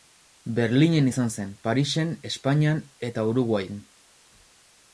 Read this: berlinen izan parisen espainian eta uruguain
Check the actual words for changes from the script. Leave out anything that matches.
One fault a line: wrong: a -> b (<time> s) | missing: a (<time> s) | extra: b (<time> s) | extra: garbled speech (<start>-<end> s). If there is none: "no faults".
extra: zen (1.3 s)